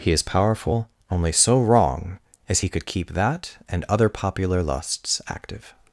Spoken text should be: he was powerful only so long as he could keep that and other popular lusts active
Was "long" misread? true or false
true